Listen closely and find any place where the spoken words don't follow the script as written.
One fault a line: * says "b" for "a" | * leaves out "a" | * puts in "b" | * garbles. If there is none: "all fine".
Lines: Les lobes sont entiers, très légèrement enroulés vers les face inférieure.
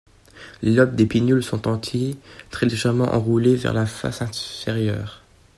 * puts in "des pinnules"
* says "la" for "les"